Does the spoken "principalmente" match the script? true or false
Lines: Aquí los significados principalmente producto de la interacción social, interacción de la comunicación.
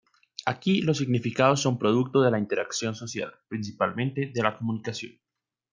false